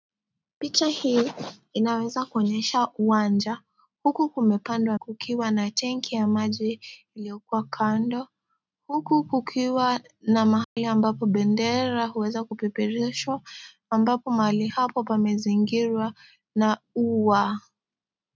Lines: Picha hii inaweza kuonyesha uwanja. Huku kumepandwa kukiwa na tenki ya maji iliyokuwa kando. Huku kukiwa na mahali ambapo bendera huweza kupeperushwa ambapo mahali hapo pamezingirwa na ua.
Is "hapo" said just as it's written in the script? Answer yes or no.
yes